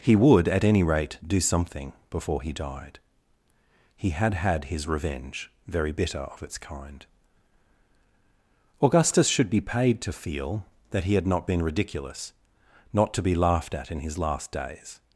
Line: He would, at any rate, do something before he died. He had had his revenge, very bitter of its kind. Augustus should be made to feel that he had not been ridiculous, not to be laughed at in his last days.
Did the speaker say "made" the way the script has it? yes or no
no